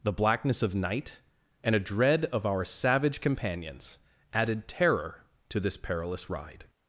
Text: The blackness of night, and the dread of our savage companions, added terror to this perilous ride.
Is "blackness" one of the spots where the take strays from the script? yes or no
no